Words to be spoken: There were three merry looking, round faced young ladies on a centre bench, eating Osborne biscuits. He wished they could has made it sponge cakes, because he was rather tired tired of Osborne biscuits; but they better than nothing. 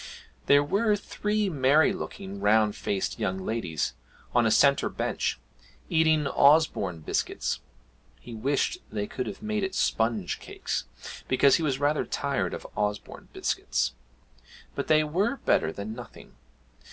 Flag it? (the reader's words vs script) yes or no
yes